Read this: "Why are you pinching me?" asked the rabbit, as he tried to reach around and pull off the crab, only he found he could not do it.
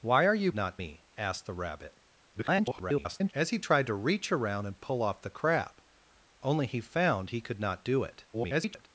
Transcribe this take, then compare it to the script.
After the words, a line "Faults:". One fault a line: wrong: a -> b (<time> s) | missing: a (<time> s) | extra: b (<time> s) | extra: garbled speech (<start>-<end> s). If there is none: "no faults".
"Why are you not me?" asked the rabbit, [garbled] as he tried to reach around and pull off the crab, only he found he could not do it. [garbled]
Faults:
wrong: pinching -> not (0.5 s)
extra: garbled speech (2.3-3.3 s)
extra: garbled speech (8.3-8.9 s)